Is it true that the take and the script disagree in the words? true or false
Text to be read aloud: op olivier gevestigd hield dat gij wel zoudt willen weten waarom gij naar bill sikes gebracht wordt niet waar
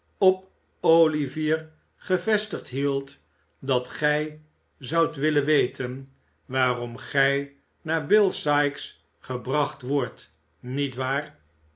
true